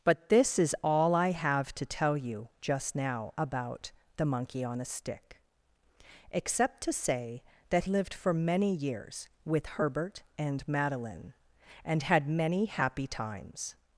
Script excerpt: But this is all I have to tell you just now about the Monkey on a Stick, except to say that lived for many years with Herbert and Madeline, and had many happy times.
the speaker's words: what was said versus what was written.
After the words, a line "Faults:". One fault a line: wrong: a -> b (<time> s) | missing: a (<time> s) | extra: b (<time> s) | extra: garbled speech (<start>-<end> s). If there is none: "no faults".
But this is all I have to tell you just now about the Monkey on a Stick, except to say that lived for many years with Herbert and Madeline, and had many happy times.
Faults:
no faults